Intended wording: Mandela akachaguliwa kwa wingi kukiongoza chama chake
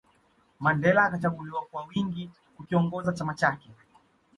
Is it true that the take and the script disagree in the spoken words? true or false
false